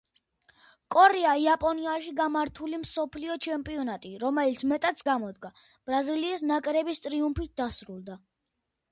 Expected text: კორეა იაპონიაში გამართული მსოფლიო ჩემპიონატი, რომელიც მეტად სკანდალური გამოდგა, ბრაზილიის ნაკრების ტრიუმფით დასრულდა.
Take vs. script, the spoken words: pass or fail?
fail